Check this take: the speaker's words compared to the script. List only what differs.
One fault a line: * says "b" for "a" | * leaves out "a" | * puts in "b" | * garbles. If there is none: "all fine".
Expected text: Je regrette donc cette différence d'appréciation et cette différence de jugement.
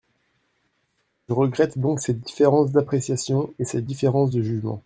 all fine